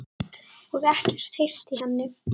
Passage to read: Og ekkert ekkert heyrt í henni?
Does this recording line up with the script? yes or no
no